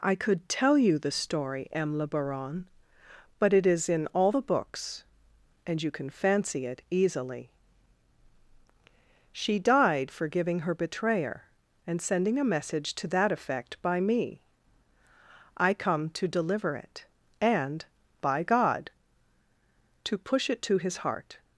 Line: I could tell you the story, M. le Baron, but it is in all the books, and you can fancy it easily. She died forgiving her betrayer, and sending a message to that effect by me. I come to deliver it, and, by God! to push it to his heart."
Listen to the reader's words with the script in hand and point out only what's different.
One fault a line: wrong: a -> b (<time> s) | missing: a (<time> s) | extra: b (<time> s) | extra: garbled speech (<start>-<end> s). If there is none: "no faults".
no faults